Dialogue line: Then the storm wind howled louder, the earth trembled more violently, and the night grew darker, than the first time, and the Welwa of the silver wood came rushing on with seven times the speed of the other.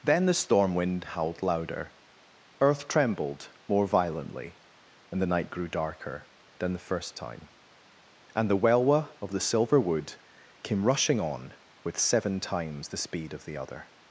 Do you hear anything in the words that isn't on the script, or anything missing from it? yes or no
yes